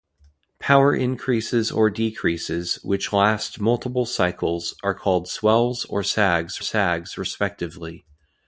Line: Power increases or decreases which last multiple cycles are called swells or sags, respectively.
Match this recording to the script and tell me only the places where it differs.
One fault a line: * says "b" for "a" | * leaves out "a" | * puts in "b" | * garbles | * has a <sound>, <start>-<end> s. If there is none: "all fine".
* puts in "sags"